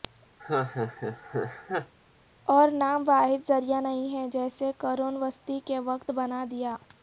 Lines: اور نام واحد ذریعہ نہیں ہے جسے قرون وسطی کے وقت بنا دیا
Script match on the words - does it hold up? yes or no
yes